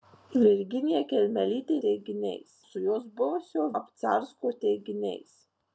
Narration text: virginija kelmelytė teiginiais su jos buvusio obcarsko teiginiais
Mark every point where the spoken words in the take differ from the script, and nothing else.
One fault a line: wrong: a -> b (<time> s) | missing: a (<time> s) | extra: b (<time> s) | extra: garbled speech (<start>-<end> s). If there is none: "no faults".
no faults